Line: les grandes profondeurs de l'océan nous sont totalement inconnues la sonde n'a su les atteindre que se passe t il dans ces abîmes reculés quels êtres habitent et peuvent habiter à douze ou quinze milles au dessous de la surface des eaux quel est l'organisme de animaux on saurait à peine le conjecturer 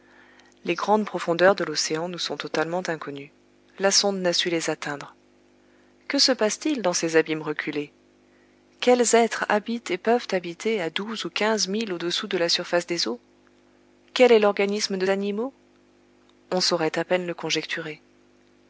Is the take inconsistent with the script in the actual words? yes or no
no